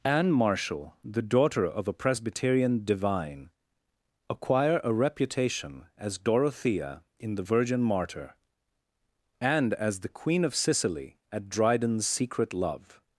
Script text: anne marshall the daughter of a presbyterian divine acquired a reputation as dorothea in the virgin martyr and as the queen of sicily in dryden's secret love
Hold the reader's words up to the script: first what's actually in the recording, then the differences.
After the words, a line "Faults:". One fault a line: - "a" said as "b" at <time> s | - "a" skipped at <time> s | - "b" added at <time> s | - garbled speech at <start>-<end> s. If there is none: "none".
anne marshall the daughter of a presbyterian divine acquire a reputation as dorothea in the virgin martyr and as the queen of sicily at dryden's secret love
Faults:
- "acquired" said as "acquire" at 4.3 s
- "in" said as "at" at 11.3 s